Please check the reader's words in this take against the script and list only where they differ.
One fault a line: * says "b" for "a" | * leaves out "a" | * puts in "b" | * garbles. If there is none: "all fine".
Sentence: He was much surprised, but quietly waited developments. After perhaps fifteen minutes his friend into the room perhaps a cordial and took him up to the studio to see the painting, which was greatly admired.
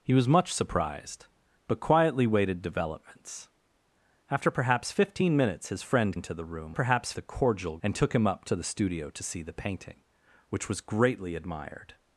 all fine